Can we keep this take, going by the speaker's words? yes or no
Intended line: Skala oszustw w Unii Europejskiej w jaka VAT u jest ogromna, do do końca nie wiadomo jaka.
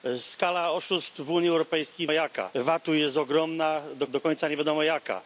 yes